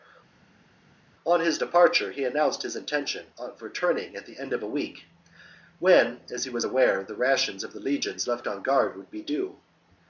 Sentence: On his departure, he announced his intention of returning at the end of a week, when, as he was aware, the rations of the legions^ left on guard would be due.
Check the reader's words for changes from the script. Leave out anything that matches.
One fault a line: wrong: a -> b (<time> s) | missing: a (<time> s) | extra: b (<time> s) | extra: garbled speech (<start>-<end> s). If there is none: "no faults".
no faults